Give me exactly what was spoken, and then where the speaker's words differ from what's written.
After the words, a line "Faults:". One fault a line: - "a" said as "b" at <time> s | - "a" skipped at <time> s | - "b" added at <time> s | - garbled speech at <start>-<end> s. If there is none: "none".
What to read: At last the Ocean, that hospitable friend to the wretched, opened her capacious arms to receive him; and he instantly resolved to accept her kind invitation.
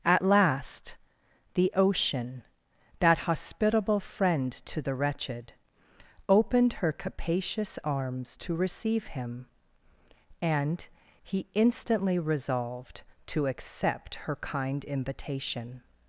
At last the Ocean, that hospitable friend to the wretched, opened her capacious arms to receive him; and he instantly resolved to accept her kind invitation.
Faults:
none